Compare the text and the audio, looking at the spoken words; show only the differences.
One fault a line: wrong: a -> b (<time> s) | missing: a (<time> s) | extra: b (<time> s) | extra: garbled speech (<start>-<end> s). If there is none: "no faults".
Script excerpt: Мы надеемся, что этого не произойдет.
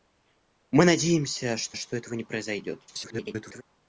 extra: что (1.7 s)
extra: garbled speech (2.9-3.6 s)